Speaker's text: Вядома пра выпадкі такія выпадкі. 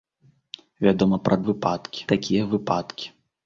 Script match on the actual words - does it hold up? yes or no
yes